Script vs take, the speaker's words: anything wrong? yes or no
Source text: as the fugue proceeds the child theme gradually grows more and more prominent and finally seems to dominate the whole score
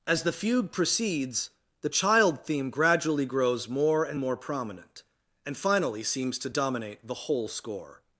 no